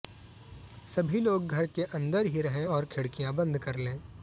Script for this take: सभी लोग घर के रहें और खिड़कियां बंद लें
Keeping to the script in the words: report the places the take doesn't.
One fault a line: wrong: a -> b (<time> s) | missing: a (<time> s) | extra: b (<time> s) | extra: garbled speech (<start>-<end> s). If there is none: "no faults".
extra: अंदर ही (1.9 s)
extra: कर (3.6 s)